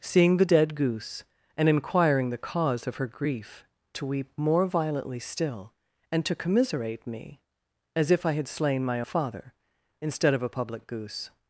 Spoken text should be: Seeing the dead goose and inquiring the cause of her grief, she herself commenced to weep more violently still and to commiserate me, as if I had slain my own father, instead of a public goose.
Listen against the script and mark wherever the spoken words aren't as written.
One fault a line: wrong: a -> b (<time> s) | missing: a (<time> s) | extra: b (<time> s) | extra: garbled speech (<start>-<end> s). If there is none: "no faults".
missing: she herself commenced (3.6 s)
missing: own (9.0 s)